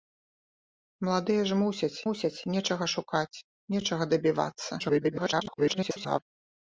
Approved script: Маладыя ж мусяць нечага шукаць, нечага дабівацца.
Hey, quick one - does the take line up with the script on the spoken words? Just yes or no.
no